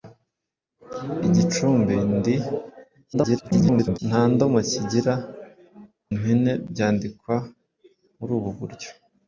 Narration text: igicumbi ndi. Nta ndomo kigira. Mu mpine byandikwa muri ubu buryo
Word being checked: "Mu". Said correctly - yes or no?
no